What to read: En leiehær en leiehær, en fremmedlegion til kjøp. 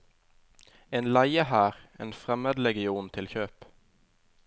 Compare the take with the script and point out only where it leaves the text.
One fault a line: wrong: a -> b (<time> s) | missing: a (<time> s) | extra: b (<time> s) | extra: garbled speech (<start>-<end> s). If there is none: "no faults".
missing: leiehær en (2.1 s)